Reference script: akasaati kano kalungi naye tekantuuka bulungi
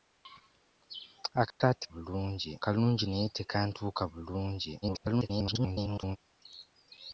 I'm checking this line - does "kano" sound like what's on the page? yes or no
no